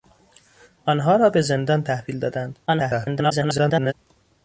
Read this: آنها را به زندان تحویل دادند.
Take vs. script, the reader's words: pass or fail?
fail